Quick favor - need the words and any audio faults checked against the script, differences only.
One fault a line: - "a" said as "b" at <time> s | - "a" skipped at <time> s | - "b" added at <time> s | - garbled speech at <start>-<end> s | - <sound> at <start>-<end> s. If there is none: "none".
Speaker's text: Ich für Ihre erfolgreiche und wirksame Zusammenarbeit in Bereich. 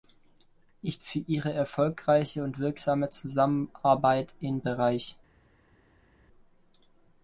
none